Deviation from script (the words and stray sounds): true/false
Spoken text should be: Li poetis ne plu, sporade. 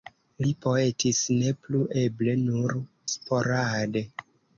true